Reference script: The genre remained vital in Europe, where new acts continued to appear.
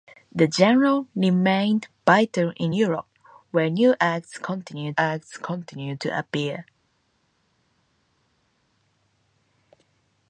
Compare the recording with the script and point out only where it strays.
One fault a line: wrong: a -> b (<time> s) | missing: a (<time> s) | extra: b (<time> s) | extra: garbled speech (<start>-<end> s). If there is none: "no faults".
extra: acts continued (5.0 s)